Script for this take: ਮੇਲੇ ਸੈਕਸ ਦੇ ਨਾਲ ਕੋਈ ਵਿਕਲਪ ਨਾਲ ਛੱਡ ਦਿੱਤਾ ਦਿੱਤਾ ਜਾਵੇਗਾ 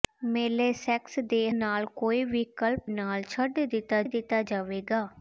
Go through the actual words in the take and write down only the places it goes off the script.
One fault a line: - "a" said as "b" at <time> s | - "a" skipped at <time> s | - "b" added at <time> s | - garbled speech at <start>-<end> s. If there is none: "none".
none